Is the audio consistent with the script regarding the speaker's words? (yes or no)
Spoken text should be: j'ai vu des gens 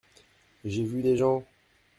yes